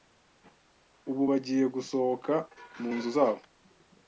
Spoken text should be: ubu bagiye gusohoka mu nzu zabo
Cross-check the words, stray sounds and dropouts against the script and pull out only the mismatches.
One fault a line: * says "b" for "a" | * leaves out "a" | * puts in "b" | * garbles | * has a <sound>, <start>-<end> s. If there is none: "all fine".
all fine